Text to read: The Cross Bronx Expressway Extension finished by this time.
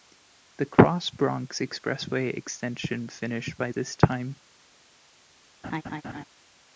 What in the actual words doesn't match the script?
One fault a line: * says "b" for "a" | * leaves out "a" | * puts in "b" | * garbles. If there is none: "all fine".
all fine